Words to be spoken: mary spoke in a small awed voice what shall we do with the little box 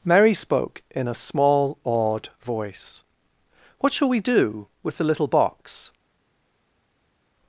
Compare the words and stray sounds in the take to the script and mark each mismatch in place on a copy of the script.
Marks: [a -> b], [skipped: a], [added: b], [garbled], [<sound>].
mary spoke in a small awed voice what shall we do with the little box